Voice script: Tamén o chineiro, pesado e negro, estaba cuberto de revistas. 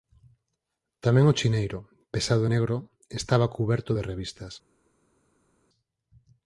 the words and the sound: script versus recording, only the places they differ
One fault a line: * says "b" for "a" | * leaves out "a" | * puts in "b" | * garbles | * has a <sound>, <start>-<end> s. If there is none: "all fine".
all fine